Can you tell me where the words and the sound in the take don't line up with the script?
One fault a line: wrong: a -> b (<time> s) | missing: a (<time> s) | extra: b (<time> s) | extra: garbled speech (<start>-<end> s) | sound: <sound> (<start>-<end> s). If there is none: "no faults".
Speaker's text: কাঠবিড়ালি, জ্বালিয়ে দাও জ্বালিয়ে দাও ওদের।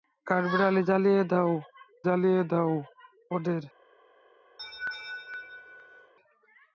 sound: laugh (4.6-6.1 s)